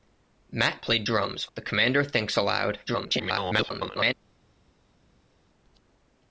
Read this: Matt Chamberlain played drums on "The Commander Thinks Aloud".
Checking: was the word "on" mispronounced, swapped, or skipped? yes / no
yes